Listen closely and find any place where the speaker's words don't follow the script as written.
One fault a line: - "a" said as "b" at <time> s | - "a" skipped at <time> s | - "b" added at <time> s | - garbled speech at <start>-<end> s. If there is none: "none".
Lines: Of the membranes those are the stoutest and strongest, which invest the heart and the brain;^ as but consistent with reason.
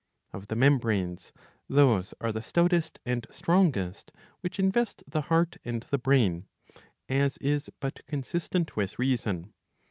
- "is" added at 7.4 s